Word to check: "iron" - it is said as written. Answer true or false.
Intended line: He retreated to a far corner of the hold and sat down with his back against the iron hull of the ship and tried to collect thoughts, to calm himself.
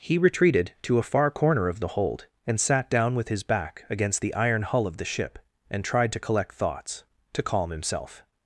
true